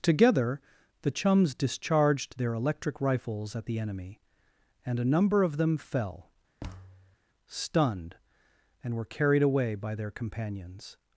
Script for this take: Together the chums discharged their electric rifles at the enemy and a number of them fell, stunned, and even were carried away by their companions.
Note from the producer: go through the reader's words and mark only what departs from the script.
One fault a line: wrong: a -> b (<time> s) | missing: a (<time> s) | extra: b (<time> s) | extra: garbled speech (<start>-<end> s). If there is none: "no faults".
missing: even (8.9 s)